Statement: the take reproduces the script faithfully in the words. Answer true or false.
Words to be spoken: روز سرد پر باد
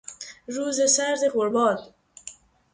true